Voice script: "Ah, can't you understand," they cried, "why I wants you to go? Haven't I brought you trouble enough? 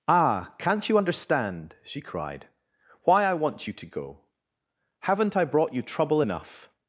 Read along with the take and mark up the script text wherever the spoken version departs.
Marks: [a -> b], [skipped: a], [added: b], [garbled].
"Ah, can't you understand," [they -> she] cried, "why I [wants -> want] you to go? Haven't I brought you trouble enough?